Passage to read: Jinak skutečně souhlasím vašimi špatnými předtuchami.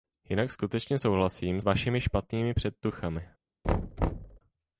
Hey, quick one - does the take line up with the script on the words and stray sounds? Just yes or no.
no